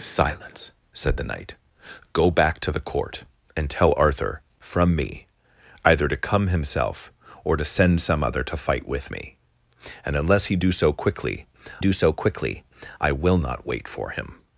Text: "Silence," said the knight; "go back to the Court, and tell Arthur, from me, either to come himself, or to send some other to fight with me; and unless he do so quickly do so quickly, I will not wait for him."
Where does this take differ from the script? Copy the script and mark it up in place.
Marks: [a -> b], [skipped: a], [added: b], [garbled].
"Silence," said the knight; "go back to the Court, and tell Arthur, from me, either to come himself, or to send some other to fight with me; and unless he do so quickly do so quickly, I will not wait for him."